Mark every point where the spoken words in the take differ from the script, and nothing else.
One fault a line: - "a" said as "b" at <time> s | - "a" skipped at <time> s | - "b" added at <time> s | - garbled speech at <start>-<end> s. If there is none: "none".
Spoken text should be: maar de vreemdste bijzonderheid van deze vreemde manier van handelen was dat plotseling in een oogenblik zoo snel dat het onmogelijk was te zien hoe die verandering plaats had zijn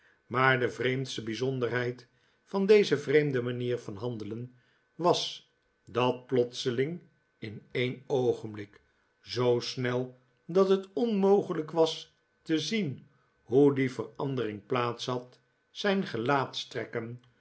none